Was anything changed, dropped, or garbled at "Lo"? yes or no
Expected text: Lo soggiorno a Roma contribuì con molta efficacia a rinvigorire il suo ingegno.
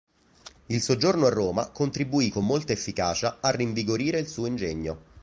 yes